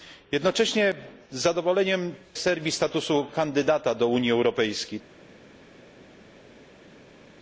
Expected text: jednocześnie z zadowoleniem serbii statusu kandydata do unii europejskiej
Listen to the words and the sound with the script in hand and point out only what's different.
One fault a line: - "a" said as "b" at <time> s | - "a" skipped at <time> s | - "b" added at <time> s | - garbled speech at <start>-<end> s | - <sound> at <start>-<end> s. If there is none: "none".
none